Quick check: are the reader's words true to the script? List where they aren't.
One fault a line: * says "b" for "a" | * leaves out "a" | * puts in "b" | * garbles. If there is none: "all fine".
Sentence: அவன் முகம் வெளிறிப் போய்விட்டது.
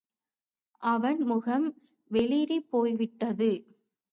all fine